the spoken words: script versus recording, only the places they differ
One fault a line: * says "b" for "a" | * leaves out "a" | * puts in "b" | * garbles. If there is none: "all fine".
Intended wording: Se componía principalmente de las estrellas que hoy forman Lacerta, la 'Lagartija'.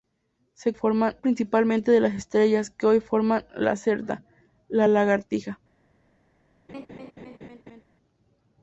* says "forman" for "componía"